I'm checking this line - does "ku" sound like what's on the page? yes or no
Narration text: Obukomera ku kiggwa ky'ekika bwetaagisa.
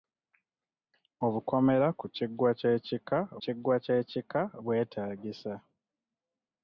yes